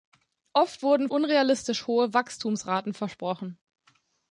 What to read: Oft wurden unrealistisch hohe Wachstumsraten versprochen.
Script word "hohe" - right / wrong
right